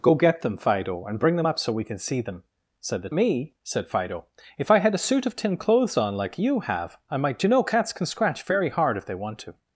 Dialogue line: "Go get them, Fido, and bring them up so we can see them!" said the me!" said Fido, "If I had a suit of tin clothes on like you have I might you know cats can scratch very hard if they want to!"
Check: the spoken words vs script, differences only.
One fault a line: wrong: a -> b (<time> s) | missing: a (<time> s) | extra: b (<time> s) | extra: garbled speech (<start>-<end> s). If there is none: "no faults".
no faults